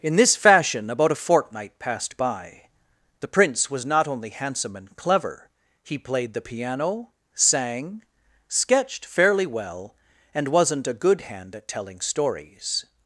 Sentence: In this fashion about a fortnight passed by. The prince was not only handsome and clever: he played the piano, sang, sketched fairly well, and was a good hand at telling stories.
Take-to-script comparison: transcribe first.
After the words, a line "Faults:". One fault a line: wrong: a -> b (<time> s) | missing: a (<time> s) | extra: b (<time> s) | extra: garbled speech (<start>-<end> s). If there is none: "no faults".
In this fashion about a fortnight passed by. The prince was not only handsome and clever: he played the piano, sang, sketched fairly well, and wasn't a good hand at telling stories.
Faults:
wrong: was -> wasn't (10.5 s)